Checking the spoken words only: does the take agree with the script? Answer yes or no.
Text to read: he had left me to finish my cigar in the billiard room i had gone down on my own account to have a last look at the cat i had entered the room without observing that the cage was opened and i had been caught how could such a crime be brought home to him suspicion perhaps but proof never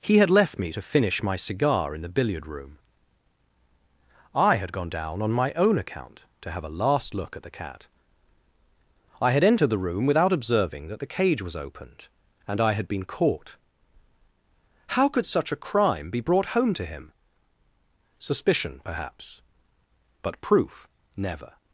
yes